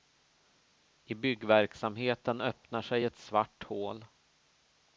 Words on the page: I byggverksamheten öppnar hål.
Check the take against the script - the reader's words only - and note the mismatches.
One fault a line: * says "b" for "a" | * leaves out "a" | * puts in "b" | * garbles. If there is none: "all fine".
* puts in "sig ett svart"